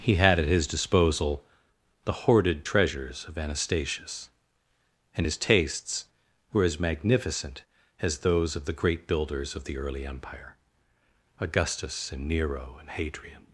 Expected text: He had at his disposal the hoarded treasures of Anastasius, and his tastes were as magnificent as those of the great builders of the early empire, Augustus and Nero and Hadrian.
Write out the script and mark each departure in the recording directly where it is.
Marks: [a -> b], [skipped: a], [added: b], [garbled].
He had at his disposal the hoarded treasures of Anastasius, and his tastes were as magnificent as those of the great builders of the early empire, Augustus and Nero and Hadrian.